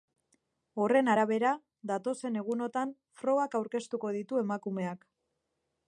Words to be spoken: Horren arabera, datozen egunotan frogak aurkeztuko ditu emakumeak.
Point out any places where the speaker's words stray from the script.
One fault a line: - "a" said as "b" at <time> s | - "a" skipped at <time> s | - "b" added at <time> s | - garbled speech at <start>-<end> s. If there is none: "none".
none